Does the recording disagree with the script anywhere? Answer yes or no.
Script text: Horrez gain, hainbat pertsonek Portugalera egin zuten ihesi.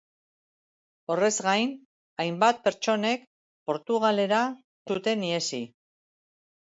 yes